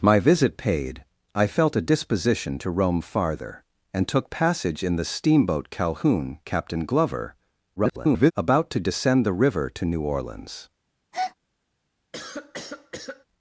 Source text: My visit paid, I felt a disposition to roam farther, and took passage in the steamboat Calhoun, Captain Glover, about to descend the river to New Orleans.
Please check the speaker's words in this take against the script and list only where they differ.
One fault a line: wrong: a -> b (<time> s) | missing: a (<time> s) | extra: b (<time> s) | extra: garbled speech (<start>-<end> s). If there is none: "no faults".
extra: garbled speech (7.8-8.3 s)